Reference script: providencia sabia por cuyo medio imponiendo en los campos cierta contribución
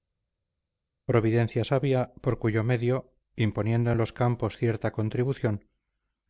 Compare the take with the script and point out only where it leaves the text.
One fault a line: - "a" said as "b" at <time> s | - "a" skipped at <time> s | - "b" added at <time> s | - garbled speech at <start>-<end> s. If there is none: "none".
none